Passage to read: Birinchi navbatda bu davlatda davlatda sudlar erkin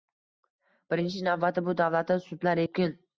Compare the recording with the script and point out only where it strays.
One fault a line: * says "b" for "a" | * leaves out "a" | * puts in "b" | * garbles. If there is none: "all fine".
* leaves out "davlatda"